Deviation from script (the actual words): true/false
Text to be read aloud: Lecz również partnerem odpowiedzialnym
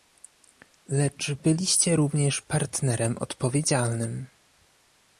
true